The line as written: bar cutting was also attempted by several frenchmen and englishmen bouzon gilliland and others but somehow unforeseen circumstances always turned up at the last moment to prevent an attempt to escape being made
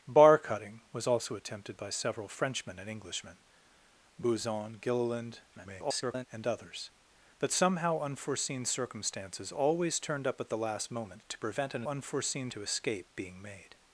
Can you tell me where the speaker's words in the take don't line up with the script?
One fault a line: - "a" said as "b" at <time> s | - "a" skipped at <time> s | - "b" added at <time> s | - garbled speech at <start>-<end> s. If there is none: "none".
- garbled speech at 5.5-6.3 s
- "attempt" said as "unforeseen" at 11.9 s